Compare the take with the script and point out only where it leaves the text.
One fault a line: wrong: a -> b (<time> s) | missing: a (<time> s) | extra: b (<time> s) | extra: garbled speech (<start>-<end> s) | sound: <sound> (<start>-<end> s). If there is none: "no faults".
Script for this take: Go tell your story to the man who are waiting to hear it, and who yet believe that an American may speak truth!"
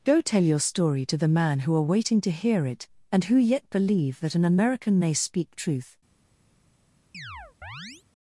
sound: chirp (7.1-8.0 s)